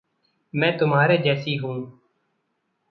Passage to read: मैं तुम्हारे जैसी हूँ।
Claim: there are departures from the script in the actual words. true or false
false